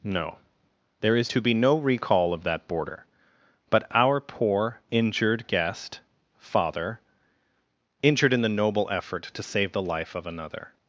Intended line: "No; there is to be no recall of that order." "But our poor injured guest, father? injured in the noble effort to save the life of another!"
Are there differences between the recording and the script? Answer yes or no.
yes